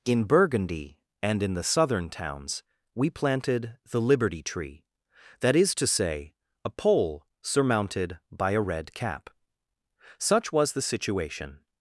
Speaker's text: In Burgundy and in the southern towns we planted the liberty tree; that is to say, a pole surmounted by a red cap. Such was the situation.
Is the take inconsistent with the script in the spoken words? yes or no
no